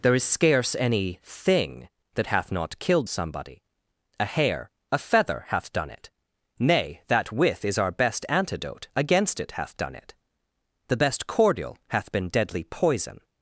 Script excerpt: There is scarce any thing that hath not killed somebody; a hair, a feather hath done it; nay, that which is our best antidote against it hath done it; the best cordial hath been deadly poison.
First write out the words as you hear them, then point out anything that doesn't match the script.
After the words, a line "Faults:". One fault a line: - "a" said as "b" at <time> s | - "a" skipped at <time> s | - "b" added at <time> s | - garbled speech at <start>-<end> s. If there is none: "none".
There is scarce any thing that hath not killed somebody; a hair, a feather hath done it; nay, that with is our best antidote against it hath done it; the best cordial hath been deadly poison.
Faults:
- "which" said as "with" at 7.3 s